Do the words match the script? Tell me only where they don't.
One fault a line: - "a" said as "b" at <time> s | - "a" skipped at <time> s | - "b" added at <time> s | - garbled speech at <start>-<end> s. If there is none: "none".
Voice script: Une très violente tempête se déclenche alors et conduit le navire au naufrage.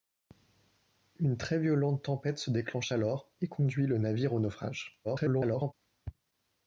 - garbled speech at 5.0-5.7 s